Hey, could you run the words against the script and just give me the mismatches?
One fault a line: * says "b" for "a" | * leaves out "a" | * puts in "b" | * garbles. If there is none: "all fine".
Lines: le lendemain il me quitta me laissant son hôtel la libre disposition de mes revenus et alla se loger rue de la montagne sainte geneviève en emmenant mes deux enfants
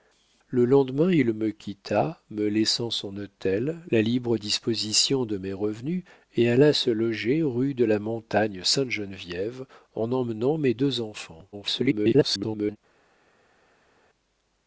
* garbles